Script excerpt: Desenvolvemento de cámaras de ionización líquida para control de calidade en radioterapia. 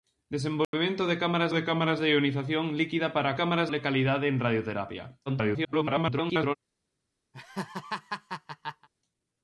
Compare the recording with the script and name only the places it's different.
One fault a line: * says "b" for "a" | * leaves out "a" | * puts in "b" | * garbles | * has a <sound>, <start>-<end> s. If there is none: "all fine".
* has a dropout, 0.6-0.7 s
* puts in "cámaras de"
* says "cámaras" for "control"
* garbles
* has a laugh, 7.3-8.9 s